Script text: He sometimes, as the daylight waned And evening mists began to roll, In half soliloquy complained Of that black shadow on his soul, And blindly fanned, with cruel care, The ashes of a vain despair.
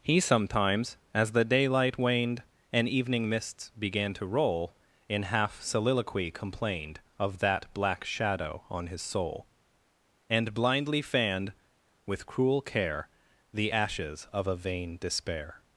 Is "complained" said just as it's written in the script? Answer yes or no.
yes